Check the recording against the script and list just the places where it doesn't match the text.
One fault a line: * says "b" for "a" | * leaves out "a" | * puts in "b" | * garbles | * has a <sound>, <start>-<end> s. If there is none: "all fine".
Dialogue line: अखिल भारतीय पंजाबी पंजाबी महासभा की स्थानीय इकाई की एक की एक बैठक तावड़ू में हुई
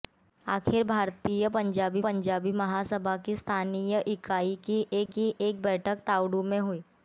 * has a dropout, 5.1-5.1 s